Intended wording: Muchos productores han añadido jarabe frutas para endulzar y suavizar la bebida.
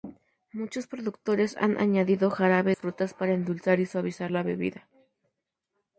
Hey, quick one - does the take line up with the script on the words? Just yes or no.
yes